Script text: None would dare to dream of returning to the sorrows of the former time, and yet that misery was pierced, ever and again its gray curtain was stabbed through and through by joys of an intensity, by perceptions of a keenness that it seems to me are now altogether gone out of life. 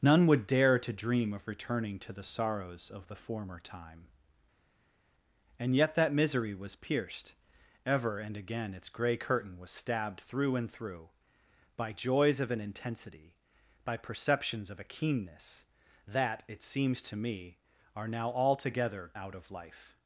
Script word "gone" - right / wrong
wrong